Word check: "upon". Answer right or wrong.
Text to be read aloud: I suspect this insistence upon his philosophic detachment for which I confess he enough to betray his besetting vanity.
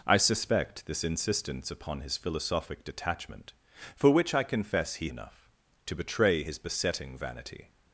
right